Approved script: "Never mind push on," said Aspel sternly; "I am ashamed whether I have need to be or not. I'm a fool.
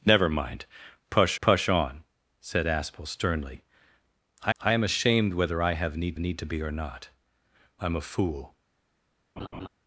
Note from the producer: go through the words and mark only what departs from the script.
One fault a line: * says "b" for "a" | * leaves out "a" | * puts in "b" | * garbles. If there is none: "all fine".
* puts in "push"
* puts in "I"
* puts in "need"